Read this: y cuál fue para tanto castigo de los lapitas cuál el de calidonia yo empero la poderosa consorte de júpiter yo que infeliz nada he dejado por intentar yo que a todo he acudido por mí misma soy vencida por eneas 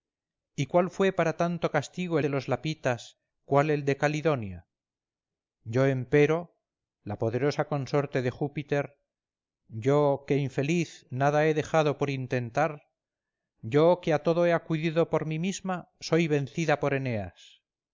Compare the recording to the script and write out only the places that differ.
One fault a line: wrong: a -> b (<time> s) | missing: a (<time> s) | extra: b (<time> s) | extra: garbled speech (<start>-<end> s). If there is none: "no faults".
no faults